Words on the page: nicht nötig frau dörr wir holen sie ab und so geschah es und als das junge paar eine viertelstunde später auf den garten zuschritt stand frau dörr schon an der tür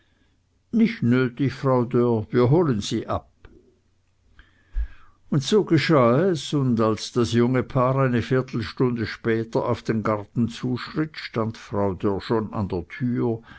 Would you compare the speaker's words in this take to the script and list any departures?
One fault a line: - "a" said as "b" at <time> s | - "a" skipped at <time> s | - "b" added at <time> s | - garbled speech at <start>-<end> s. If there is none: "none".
none